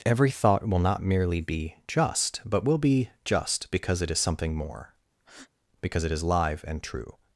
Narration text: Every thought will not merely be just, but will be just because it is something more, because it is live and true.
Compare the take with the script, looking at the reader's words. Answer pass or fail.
pass